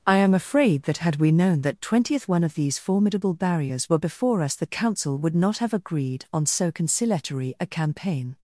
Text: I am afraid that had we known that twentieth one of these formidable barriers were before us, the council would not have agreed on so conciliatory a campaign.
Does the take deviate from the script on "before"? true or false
false